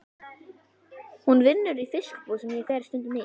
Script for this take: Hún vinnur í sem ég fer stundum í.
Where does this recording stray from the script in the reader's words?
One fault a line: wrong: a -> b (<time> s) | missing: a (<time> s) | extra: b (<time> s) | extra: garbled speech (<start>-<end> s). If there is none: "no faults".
extra: fiskbúð (2.0 s)